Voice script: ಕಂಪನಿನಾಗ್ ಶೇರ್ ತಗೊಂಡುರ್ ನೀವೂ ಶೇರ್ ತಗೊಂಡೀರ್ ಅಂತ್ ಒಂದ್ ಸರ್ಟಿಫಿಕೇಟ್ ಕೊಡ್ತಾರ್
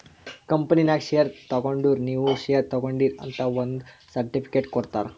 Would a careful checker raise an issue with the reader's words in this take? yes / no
no